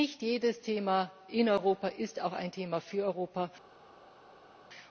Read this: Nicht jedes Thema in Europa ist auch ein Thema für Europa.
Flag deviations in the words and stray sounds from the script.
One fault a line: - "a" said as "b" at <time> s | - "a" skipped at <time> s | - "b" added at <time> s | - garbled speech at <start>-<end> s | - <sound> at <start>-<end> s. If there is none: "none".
none